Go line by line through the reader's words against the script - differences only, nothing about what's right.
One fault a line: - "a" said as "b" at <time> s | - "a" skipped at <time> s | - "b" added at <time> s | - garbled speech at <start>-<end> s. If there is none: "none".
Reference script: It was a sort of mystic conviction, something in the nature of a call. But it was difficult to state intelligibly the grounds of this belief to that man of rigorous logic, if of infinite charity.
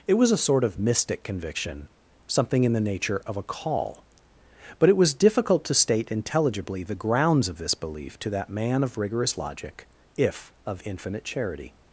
none